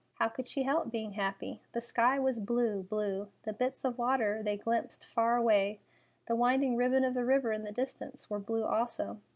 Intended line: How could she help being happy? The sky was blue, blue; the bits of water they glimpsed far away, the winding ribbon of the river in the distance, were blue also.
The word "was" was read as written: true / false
true